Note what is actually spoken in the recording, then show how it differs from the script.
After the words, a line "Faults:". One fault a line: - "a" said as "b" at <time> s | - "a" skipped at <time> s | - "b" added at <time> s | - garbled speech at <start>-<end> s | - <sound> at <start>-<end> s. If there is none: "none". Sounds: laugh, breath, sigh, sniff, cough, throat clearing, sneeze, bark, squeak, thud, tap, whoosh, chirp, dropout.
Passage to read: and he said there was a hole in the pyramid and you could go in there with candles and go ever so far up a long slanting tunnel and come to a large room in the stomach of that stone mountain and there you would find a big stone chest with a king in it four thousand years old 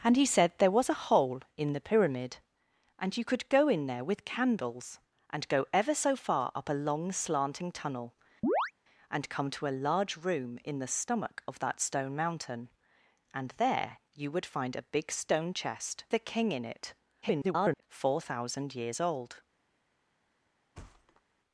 and he said there was a hole in the pyramid and you could go in there with candles and go ever so far up a long slanting tunnel and come to a large room in the stomach of that stone mountain and there you would find a big stone chest a king in it [garbled] four thousand years old
Faults:
- chirp at 8.4-8.7 s
- "with" skipped at 16.0 s
- garbled speech at 17.2-17.8 s
- thud at 20.7-21.2 s